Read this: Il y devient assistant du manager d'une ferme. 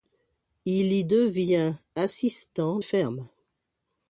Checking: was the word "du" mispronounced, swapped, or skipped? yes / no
yes